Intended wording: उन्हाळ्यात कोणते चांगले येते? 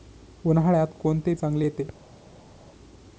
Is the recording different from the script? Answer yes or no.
no